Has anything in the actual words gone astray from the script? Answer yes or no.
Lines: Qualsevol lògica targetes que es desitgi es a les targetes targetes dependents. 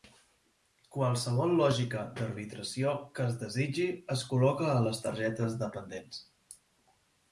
yes